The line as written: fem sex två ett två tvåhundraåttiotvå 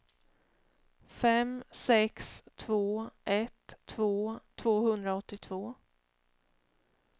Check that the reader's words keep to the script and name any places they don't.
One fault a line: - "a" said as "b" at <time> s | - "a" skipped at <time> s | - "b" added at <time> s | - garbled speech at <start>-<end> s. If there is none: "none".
none